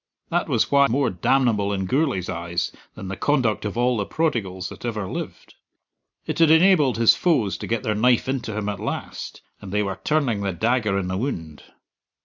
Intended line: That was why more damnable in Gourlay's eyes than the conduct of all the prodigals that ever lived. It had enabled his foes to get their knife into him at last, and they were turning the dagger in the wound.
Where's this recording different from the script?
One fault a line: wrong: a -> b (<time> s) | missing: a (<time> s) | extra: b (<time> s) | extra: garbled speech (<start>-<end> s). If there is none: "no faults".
no faults